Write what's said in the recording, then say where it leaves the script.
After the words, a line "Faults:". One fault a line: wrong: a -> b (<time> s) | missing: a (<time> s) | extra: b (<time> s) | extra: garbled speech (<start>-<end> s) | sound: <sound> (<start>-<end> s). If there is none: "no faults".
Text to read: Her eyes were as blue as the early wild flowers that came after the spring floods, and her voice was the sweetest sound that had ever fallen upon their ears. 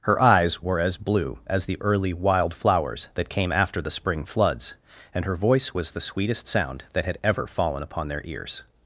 Her eyes were as blue as the early wild flowers that came after the spring floods, and her voice was the sweetest sound that had ever fallen upon their ears.
Faults:
no faults